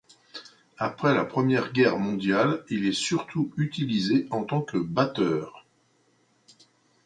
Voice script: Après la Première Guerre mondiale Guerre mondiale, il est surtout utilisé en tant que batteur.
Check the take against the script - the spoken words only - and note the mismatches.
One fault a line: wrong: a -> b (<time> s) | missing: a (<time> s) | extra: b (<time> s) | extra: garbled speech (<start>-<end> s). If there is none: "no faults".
missing: Guerre mondiale (2.6 s)